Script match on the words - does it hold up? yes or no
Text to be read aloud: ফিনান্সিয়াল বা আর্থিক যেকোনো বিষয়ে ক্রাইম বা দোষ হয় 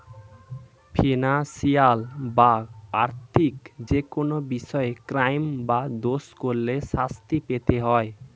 no